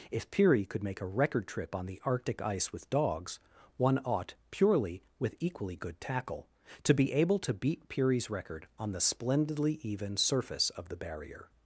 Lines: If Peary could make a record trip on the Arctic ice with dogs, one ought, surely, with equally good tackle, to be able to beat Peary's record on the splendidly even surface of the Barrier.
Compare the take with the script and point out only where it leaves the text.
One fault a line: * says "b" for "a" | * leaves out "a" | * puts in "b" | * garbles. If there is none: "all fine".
* says "purely" for "surely"